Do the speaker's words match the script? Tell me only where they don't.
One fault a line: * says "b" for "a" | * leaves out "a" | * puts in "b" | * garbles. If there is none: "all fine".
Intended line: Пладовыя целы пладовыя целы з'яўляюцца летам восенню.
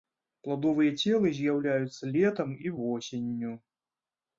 * leaves out "пладовыя целы"
* puts in "і"